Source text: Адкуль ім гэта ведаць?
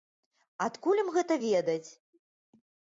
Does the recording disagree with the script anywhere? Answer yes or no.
no